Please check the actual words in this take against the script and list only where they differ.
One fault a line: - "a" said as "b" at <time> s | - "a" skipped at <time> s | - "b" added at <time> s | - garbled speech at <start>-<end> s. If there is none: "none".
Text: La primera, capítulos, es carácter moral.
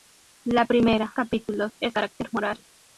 none